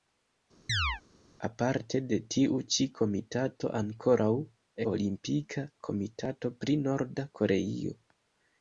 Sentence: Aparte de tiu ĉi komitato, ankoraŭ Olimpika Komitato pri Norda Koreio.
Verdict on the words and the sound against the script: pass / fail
fail